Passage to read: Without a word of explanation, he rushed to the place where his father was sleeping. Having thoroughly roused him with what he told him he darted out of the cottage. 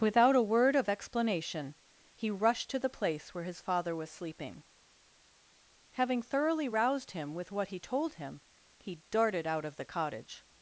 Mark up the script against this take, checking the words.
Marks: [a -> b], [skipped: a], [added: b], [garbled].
Without a word of explanation, he rushed to the place where his father was sleeping. Having thoroughly roused him with what he told him he darted out of the cottage.